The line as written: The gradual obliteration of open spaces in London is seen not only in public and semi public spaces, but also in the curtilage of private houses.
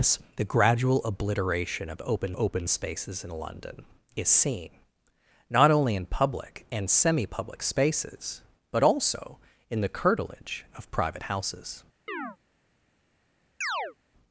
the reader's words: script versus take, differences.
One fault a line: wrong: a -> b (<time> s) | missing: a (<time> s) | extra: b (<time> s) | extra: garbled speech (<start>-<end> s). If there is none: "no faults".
extra: open (2.4 s)